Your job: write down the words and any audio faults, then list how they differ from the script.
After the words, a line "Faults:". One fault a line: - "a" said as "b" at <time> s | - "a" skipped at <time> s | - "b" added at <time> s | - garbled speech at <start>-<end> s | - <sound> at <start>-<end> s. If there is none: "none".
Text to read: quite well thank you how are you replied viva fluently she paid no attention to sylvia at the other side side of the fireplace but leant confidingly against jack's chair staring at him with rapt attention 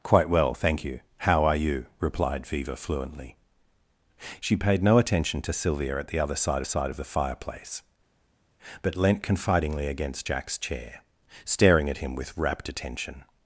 quite well thank you how are you replied viva fluently she paid no attention to sylvia at the other side side of the fireplace but leant confidingly against jack's chair staring at him with rapt attention
Faults:
none